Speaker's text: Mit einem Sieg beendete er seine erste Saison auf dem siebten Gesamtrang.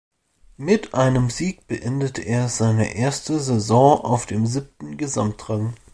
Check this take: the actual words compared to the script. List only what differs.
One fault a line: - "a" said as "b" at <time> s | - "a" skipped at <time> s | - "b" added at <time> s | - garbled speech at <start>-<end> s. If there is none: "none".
none